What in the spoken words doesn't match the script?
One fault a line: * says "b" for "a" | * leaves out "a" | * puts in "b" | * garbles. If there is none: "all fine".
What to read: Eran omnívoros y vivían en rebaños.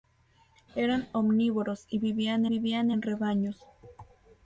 * puts in "vivían"